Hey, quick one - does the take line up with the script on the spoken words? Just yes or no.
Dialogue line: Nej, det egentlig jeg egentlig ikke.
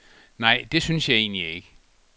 no